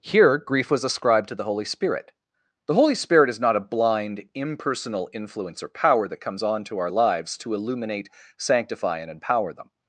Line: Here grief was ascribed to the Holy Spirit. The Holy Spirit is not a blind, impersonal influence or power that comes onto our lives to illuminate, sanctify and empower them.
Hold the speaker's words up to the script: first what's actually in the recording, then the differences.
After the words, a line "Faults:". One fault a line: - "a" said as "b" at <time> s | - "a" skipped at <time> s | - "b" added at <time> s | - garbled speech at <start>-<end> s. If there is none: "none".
Here grief was ascribed to the Holy Spirit. The Holy Spirit is not a blind, impersonal influence or power that comes onto our lives to illuminate, sanctify and empower them.
Faults:
none